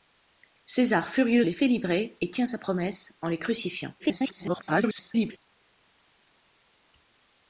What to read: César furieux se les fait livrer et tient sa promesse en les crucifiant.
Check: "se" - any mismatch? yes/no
yes